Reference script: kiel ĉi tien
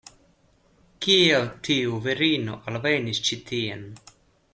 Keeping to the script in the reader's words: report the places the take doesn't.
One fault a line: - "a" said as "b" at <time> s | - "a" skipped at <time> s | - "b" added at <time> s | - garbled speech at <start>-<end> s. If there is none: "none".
- "tiu virino alvenis" added at 1.7 s